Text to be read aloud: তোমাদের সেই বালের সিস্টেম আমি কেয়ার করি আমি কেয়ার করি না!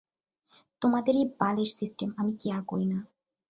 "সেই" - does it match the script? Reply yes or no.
no